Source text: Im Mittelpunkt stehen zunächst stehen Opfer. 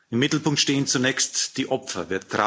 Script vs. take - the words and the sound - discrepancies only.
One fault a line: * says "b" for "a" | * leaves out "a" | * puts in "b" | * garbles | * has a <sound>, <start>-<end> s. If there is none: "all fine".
* says "die" for "stehen"